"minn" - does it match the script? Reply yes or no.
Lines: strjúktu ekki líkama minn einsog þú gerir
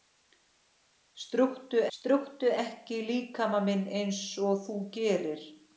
yes